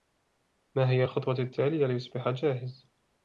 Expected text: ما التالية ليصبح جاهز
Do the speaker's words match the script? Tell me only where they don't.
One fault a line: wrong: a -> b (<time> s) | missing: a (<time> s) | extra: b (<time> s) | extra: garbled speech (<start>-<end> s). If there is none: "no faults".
extra: هي الخطوة (0.9 s)